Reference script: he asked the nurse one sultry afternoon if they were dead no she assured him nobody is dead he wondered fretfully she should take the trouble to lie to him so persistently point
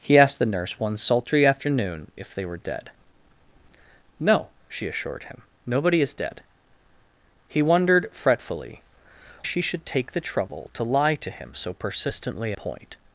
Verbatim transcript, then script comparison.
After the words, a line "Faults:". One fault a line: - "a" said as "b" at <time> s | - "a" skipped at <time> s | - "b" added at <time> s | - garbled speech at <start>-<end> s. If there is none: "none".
he asked the nurse one sultry afternoon if they were dead no she assured him nobody is dead he wondered fretfully she should take the trouble to lie to him so persistently point
Faults:
none